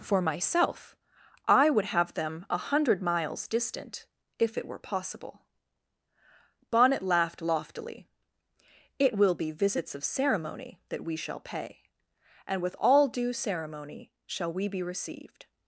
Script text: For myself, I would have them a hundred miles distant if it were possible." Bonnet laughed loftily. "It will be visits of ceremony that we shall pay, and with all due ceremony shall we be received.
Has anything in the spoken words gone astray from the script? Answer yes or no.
no